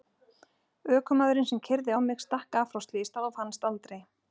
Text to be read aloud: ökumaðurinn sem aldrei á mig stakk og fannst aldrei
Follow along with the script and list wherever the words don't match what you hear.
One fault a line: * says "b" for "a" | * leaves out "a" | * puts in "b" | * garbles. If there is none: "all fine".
* says "keyrði" for "aldrei"
* puts in "af frá slysstað"